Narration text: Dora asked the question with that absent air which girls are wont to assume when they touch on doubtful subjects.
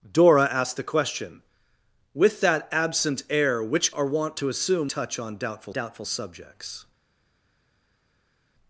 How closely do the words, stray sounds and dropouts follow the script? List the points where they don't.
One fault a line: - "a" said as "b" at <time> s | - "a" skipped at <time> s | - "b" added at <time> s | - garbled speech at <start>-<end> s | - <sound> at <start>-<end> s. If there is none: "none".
- "girls" skipped at 3.9 s
- "when they" skipped at 4.9 s
- "doubtful" added at 5.7 s